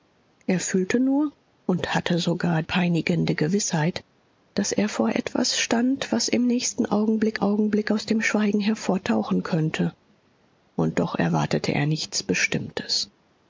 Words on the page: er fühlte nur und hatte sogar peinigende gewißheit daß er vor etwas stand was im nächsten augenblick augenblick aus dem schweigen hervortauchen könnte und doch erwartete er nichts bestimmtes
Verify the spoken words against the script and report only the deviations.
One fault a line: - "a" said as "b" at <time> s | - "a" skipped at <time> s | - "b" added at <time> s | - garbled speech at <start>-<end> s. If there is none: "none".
none